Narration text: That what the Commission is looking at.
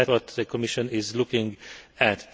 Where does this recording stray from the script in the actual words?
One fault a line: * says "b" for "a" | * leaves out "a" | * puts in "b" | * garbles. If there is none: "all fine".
all fine